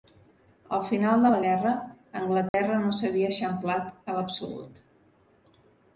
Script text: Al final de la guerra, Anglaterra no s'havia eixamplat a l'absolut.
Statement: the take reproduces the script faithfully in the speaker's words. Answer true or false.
true